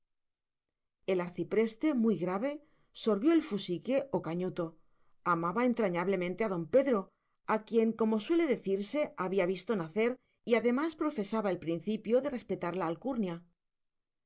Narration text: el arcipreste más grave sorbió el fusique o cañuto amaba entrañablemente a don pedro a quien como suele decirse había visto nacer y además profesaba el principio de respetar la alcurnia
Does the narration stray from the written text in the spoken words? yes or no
yes